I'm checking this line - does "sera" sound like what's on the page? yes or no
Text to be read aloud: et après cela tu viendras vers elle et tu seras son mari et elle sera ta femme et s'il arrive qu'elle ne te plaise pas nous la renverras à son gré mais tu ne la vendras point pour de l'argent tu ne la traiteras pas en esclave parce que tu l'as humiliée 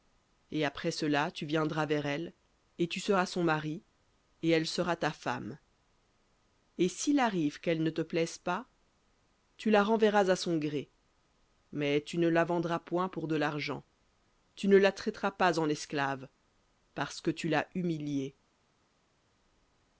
yes